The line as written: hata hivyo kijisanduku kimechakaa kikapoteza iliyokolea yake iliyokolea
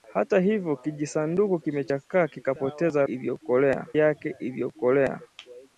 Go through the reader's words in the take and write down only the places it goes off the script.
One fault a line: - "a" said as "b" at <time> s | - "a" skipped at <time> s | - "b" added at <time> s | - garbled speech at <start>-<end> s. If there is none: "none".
none